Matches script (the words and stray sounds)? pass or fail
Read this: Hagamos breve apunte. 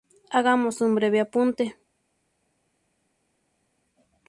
fail